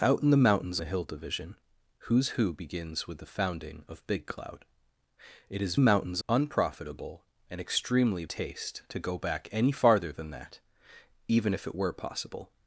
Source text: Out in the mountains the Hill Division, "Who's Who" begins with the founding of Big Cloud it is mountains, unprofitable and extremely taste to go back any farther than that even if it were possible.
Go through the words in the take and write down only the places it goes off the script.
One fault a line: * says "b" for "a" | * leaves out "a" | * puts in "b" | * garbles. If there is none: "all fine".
all fine